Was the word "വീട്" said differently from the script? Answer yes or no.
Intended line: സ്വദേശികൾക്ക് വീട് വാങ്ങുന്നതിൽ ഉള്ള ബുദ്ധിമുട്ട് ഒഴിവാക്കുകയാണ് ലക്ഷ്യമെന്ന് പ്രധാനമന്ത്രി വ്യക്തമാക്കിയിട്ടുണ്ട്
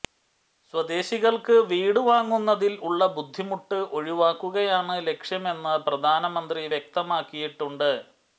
no